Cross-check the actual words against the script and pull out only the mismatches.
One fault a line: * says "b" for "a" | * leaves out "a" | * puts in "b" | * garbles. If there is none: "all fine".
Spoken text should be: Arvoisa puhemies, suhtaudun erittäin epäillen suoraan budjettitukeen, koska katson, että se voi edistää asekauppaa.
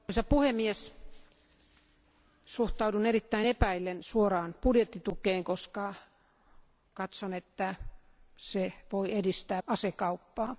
all fine